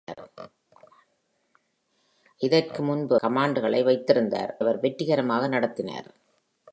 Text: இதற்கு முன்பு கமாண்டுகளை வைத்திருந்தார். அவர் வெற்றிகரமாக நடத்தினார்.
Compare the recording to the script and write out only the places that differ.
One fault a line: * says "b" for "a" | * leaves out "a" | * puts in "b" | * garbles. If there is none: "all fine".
all fine